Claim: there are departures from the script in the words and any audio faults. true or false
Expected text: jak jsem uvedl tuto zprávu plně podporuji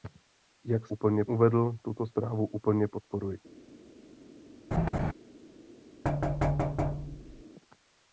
true